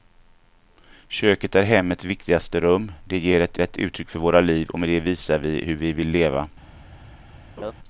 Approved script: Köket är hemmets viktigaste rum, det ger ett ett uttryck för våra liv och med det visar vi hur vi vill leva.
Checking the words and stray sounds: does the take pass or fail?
fail